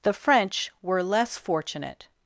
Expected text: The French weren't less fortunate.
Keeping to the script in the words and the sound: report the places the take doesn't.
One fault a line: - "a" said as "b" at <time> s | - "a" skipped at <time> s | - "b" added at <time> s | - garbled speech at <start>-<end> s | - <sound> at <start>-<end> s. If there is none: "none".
- "weren't" said as "were" at 0.8 s